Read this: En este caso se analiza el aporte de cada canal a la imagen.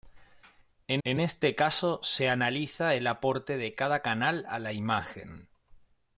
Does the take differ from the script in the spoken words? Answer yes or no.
yes